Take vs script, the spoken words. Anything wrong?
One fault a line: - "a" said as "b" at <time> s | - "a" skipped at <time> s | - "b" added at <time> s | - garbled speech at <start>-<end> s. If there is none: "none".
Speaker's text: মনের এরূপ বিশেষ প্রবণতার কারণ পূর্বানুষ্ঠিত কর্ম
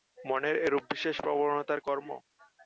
- "কারণ পূর্বানুষ্ঠিত" skipped at 1.8 s